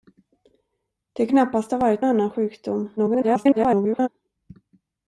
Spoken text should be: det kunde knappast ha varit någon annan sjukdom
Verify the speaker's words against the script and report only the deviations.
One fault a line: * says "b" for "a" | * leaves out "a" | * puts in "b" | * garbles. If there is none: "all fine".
* leaves out "kunde"
* leaves out "någon"
* garbles